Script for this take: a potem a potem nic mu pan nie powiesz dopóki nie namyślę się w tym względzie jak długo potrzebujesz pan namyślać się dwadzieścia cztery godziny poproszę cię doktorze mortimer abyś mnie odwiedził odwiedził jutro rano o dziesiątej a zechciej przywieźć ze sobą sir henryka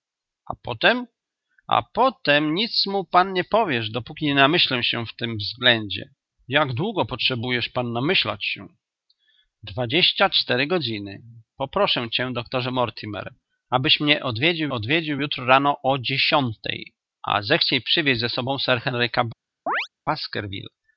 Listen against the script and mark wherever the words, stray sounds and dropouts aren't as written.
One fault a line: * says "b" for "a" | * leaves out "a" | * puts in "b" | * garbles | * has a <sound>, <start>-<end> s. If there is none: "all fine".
* has a chirp, 19.7-19.9 s